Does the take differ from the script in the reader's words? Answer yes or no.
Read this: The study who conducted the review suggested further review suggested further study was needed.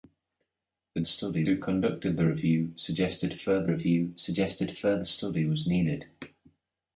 no